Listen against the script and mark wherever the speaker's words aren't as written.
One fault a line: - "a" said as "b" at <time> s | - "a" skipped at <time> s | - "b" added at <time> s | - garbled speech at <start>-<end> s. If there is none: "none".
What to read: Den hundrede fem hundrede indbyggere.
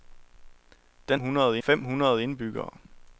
none